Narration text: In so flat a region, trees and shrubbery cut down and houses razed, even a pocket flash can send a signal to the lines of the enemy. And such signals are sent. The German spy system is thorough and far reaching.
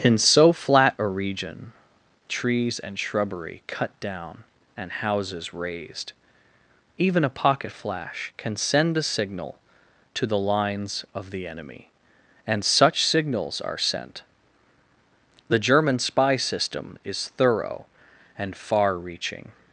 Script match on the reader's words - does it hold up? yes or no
yes